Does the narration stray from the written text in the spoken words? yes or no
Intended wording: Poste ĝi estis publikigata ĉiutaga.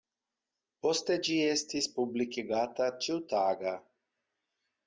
no